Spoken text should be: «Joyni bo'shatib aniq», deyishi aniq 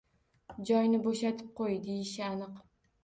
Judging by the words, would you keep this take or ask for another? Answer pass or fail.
fail